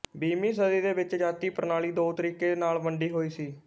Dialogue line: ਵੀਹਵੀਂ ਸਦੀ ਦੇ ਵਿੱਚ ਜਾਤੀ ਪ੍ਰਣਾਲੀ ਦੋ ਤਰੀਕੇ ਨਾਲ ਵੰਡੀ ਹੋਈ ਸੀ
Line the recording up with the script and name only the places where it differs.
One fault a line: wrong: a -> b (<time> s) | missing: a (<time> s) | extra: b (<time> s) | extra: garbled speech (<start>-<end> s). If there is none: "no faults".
no faults